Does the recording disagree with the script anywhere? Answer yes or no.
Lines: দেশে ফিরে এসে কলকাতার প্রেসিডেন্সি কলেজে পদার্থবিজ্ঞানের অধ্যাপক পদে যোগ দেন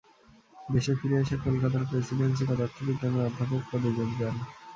yes